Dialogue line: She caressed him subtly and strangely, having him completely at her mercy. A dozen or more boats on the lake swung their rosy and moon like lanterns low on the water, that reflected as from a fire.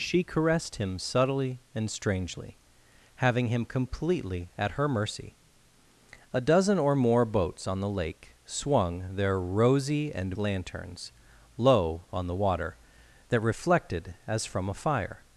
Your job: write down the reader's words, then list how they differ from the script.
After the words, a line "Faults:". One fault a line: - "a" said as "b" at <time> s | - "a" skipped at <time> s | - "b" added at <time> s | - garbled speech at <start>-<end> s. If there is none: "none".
She caressed him subtly and strangely, having him completely at her mercy. A dozen or more boats on the lake swung their rosy and lanterns low on the water, that reflected as from a fire.
Faults:
- "moon like" skipped at 10.4 s